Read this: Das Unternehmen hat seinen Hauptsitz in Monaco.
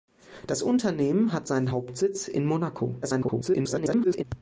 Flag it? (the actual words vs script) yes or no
yes